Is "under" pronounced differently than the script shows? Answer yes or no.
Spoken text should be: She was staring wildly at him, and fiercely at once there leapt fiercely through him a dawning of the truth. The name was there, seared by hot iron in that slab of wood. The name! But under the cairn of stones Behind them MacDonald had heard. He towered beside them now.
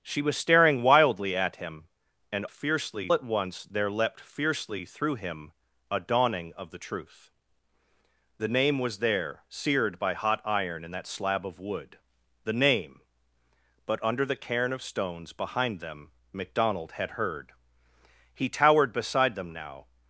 no